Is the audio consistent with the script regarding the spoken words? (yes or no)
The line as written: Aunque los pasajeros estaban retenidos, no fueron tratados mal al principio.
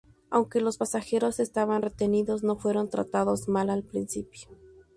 yes